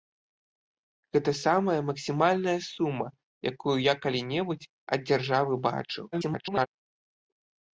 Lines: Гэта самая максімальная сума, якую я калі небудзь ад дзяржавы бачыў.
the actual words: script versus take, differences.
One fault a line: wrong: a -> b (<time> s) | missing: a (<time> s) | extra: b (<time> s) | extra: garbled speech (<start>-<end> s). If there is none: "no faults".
extra: garbled speech (6.1-6.7 s)